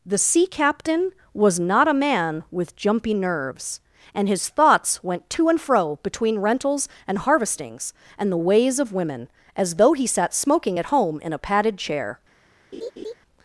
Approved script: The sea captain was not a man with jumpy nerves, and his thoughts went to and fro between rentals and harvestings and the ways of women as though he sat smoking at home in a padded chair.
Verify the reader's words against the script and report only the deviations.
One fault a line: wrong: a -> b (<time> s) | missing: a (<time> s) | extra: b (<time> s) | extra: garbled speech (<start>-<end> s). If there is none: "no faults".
no faults